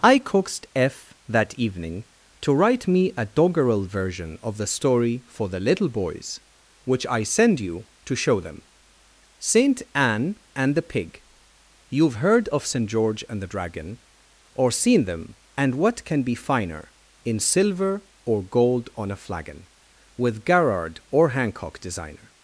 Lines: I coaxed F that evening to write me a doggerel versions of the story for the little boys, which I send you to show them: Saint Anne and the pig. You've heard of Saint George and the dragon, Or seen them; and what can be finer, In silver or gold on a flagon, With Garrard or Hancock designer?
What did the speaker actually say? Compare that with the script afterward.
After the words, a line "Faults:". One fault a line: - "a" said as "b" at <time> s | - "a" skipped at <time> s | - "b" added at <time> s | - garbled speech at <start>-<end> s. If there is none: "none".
I coaxed F that evening to write me a doggerel version of the story for the little boys, which I send you to show them: Saint Anne and the pig. You've heard of Saint George and the dragon, Or seen them; and what can be finer, In silver or gold on a flagon, With Garrard or Hancock designer?
Faults:
- "versions" said as "version" at 3.9 s